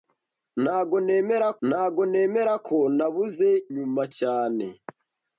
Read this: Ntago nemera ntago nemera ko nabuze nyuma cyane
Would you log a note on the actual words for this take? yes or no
no